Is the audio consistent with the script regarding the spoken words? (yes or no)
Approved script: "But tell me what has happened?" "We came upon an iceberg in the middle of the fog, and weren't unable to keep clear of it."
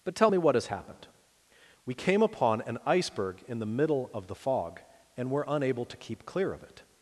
no